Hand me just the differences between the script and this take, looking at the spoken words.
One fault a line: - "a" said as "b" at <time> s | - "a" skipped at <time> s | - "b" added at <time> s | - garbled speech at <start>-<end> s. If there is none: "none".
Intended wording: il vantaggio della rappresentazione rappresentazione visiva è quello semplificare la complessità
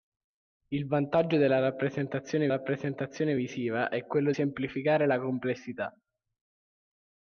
none